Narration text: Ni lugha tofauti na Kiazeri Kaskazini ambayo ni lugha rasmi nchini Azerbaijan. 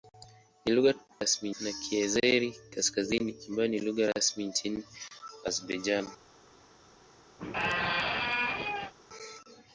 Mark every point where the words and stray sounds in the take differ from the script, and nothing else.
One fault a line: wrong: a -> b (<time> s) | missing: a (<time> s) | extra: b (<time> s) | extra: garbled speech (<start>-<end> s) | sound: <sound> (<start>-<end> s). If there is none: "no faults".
wrong: tofauti -> rasmi (1.2 s)
sound: squeak (7.4-8.9 s)